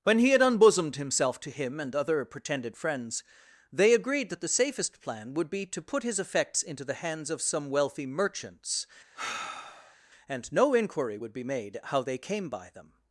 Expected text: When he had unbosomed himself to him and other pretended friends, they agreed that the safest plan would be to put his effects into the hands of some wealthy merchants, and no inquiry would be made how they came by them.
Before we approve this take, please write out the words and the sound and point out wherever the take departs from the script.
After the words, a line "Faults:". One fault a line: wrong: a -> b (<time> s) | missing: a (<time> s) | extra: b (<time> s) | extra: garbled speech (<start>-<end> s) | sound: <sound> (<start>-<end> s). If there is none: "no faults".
When he had unbosomed himself to him and other pretended friends, they agreed that the safest plan would be to put his effects into the hands of some wealthy merchants, and no inquiry would be made how they came by them.
Faults:
sound: sigh (9.1-10.0 s)